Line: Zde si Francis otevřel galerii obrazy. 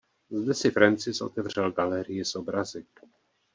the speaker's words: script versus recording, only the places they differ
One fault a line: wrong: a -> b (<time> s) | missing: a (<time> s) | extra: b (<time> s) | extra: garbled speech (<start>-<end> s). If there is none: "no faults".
extra: s (2.2 s)